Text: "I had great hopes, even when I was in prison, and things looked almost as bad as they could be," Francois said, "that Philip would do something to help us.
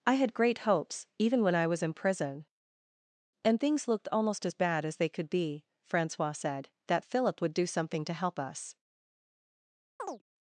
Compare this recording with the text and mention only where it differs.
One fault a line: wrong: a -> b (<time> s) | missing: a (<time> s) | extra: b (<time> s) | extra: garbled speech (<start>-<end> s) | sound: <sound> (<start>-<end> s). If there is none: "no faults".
sound: chirp (10.0-10.2 s)